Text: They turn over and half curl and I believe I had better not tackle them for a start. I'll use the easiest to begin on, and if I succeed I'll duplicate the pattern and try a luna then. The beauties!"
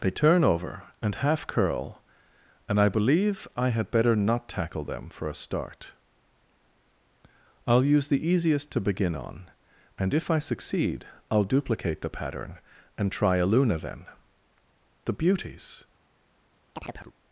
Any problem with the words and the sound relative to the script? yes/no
yes